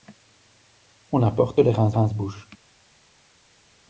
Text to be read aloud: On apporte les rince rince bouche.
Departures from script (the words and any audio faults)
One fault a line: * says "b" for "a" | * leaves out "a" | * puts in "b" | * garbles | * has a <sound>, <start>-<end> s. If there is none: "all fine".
all fine